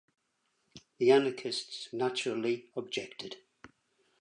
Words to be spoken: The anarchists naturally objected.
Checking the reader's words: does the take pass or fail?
pass